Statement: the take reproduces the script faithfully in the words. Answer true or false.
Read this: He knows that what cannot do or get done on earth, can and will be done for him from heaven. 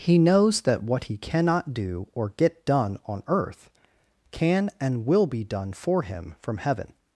false